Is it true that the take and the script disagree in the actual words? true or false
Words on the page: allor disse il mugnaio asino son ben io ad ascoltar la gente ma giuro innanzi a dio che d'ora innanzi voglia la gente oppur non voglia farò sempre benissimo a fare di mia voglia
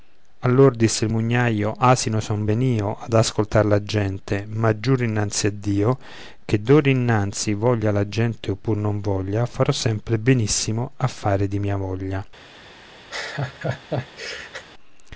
false